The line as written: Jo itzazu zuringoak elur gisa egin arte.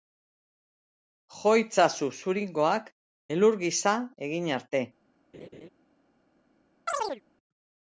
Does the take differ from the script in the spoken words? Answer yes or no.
no